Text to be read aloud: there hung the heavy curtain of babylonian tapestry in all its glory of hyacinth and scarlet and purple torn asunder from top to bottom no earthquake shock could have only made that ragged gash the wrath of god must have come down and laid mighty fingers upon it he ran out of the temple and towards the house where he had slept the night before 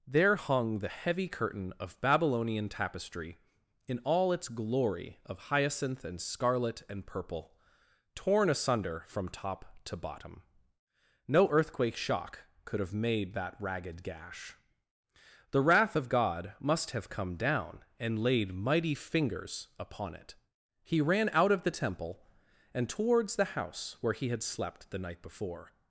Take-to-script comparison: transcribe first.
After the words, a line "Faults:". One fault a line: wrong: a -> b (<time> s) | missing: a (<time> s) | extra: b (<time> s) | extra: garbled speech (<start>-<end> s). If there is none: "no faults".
there hung the heavy curtain of babylonian tapestry in all its glory of hyacinth and scarlet and purple torn asunder from top to bottom no earthquake shock could have made that ragged gash the wrath of god must have come down and laid mighty fingers upon it he ran out of the temple and towards the house where he had slept the night before
Faults:
missing: only (12.9 s)